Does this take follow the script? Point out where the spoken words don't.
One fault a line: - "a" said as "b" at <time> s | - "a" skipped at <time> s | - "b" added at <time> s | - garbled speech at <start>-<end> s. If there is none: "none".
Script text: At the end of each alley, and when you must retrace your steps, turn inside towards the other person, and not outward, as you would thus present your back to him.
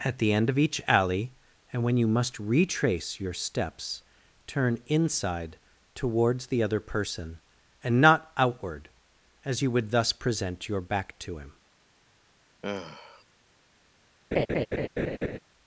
none